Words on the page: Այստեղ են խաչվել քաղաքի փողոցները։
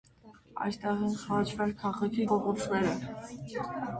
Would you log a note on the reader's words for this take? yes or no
no